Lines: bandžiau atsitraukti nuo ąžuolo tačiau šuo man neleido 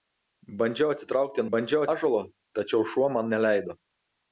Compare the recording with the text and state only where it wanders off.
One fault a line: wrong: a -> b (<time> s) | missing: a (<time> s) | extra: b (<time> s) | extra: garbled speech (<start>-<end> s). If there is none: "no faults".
wrong: nuo -> bandžiau (1.5 s)